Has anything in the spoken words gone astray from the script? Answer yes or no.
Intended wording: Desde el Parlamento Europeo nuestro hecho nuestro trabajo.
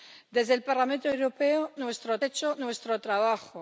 no